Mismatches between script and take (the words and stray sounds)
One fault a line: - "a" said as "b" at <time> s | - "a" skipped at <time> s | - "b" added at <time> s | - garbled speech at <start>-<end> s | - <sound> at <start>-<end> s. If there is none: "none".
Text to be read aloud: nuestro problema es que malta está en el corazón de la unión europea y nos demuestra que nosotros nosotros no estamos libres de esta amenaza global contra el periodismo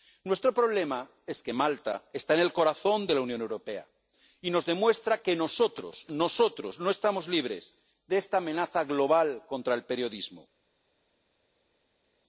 none